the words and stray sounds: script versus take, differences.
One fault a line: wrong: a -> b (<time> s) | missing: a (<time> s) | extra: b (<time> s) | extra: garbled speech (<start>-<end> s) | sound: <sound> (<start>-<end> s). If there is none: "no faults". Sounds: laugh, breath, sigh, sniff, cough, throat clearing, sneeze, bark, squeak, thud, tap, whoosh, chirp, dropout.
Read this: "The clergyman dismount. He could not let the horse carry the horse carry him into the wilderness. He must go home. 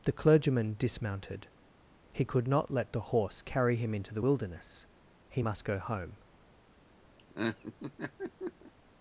wrong: dismount -> dismounted (0.8 s)
missing: the horse carry (3.8 s)
sound: laugh (7.2-8.7 s)